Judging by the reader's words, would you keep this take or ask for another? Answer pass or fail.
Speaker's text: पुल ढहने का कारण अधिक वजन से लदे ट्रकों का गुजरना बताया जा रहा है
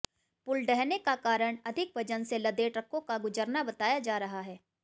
pass